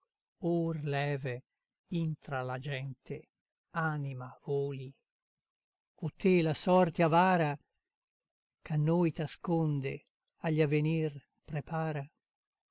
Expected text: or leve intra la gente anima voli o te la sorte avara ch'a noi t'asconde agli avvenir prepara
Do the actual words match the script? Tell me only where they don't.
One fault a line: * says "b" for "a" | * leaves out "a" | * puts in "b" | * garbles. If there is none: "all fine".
all fine